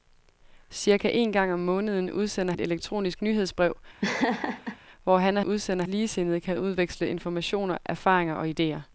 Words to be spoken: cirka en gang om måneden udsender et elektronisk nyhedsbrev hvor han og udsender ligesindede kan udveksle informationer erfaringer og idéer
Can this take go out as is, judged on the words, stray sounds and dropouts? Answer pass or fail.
fail